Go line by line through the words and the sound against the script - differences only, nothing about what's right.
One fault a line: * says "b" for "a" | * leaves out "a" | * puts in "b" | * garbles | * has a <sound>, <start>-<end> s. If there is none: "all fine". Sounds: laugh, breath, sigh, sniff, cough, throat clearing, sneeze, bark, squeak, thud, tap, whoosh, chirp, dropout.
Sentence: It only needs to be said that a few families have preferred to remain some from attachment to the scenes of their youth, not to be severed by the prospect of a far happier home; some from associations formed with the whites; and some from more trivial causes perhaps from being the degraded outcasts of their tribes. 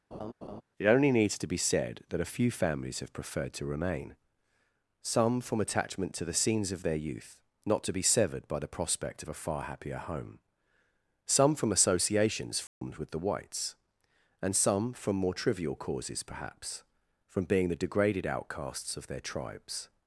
* has a laugh, 0.1-0.6 s
* has a dropout, 12.7-12.8 s